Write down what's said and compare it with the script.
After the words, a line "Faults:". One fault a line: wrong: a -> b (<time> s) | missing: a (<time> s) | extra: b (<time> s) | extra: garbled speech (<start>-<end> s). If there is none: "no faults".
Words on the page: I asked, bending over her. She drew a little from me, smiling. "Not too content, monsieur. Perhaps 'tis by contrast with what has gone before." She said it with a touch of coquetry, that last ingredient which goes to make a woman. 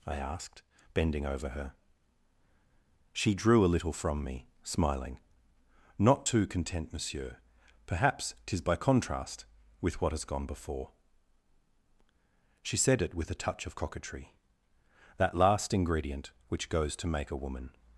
I asked, bending over her. She drew a little from me, smiling. "Not too content, monsieur. Perhaps 'tis by contrast with what has gone before." She said it with a touch of coquetry, that last ingredient which goes to make a woman.
Faults:
no faults